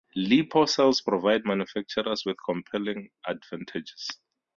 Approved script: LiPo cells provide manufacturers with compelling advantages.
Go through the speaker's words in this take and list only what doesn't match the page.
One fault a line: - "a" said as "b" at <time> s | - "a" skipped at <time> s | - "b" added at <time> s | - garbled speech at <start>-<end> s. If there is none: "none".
none